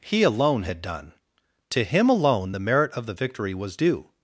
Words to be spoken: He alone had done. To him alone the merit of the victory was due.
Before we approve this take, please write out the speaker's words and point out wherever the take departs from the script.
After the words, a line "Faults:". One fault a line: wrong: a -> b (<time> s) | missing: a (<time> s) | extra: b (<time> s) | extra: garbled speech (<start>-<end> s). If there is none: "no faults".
He alone had done. To him alone the merit of the victory was due.
Faults:
no faults